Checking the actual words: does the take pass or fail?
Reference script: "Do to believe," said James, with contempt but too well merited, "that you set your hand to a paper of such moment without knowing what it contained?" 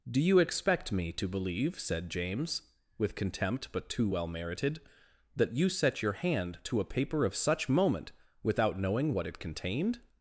fail